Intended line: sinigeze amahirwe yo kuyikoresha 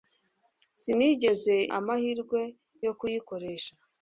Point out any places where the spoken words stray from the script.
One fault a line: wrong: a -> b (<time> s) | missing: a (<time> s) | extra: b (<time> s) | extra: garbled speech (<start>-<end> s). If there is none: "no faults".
no faults